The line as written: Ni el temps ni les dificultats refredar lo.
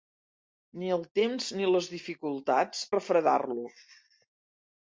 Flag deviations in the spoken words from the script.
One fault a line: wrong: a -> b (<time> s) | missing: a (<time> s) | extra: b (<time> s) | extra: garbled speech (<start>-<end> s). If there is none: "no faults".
no faults